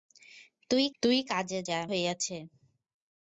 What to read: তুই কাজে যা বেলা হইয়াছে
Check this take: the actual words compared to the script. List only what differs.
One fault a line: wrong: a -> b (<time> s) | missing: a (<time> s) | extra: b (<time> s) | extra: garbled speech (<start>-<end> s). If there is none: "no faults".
extra: তুই (1.0 s)
missing: বেলা (1.8 s)